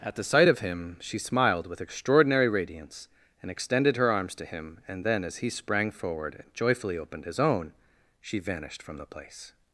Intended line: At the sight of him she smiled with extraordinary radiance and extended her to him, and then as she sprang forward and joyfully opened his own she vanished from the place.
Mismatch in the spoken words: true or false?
true